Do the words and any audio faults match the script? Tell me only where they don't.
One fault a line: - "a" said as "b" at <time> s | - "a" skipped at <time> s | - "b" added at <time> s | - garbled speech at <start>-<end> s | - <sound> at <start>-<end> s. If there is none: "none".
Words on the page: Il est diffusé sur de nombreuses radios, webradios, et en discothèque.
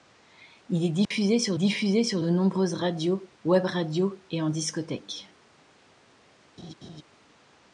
- dropout at 1.0-1.1 s
- "diffusé sur" added at 1.5 s
- laugh at 6.6-7.0 s